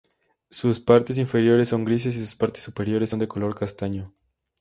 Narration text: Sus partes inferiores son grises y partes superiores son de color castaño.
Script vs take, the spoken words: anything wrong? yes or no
yes